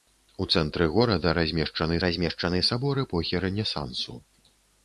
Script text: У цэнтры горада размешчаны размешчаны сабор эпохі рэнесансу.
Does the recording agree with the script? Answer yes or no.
yes